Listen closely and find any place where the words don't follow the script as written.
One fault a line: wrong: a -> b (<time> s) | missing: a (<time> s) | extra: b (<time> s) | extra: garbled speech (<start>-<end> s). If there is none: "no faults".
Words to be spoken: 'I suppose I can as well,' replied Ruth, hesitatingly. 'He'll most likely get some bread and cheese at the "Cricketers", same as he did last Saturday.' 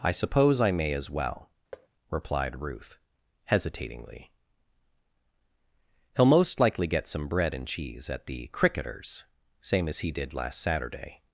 wrong: can -> may (0.7 s)